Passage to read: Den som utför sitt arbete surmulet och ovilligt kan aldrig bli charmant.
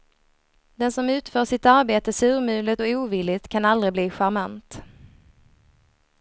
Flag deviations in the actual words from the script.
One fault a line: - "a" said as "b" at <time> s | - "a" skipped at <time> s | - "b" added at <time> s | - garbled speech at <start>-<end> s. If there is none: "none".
none